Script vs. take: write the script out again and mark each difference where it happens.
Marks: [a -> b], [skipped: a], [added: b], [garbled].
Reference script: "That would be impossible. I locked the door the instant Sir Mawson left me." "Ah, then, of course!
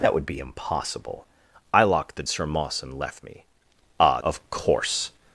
"That would be impossible. I locked the [skipped: door the instant] Sir Mawson left me." "Ah, [skipped: then,] of course!